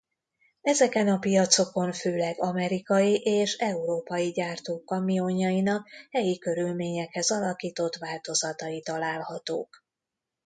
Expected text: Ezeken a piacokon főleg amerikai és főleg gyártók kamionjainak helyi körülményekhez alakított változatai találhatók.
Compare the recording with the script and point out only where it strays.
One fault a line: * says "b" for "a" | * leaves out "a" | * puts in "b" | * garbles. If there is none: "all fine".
* says "európai" for "főleg"